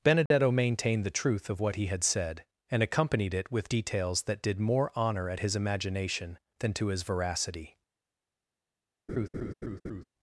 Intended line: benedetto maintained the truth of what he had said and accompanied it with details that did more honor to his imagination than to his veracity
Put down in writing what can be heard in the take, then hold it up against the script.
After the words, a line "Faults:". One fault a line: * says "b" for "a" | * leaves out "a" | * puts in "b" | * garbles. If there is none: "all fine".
benedetto maintained the truth of what he had said and accompanied it with details that did more honor at his imagination than to his veracity
Faults:
* says "at" for "to"